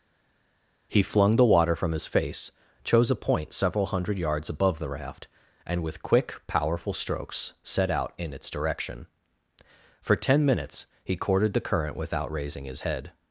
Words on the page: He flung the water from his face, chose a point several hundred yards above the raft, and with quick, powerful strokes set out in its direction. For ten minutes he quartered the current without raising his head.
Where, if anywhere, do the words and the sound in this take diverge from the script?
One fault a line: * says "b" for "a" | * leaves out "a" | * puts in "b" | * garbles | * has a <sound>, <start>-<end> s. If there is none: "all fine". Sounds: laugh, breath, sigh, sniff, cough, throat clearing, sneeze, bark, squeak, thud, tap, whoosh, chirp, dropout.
* says "courted" for "quartered"